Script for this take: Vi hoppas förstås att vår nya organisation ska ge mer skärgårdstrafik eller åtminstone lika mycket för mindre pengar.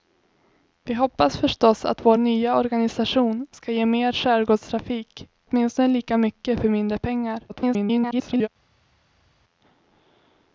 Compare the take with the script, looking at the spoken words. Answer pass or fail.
fail